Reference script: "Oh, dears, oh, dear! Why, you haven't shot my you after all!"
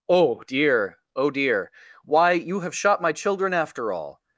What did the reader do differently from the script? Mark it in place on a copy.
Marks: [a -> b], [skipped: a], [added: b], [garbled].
"Oh, [dears, -> dear] oh, dear! Why, you [haven't -> have] shot my [you -> children] after all!"